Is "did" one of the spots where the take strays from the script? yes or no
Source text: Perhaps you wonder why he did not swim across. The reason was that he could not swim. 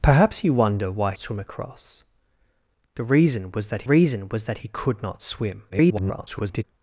yes